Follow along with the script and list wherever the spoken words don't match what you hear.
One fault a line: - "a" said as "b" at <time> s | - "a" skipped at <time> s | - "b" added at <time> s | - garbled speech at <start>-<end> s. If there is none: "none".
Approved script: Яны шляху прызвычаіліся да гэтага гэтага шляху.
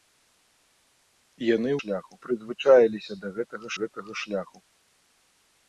none